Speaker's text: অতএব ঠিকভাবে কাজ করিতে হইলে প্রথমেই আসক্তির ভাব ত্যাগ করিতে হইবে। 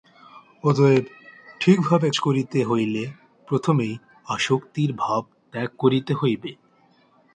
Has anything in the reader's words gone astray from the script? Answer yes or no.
yes